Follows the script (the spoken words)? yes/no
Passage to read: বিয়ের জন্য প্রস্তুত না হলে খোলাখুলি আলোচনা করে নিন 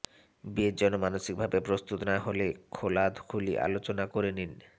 no